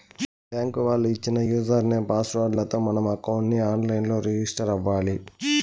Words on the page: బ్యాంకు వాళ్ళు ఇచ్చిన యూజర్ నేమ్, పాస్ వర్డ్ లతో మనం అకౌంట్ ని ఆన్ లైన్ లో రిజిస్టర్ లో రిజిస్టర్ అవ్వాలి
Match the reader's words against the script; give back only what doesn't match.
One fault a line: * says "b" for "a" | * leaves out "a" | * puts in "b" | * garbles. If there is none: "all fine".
* leaves out "లో రిజిస్టర్"